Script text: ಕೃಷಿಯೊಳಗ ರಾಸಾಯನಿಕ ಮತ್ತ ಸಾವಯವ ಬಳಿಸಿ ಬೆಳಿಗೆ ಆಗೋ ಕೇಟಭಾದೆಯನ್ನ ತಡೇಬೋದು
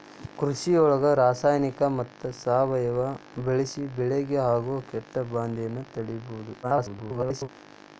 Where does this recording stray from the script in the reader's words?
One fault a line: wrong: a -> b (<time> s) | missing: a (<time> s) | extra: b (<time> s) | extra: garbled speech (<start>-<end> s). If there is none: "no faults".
extra: garbled speech (6.6-7.5 s)